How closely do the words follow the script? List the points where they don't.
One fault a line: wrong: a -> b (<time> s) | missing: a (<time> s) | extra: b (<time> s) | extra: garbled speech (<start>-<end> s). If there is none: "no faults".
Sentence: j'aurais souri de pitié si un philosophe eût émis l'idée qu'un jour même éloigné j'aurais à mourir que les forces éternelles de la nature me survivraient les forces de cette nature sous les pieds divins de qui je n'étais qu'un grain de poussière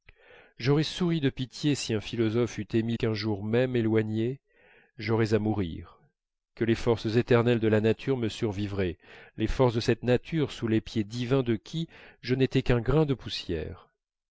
missing: l'idée (3.0 s)